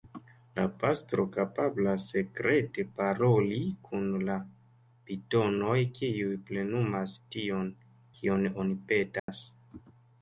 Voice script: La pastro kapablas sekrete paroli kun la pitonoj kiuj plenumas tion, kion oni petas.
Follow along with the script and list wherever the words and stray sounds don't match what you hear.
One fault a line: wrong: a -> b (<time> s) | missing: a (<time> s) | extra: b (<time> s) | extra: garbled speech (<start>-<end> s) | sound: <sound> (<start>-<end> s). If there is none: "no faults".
sound: dropout (9.2-9.3 s)